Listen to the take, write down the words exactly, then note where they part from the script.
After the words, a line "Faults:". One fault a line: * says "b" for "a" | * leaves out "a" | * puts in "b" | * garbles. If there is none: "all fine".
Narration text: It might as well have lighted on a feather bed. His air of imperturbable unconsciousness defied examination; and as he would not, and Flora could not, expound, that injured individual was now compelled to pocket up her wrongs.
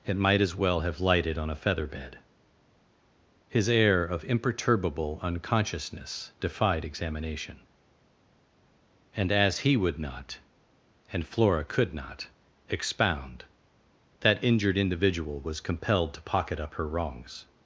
It might as well have lighted on a feather bed. His air of imperturbable unconsciousness defied examination; and as he would not, and Flora could not, expound, that injured individual was compelled to pocket up her wrongs.
Faults:
* leaves out "now"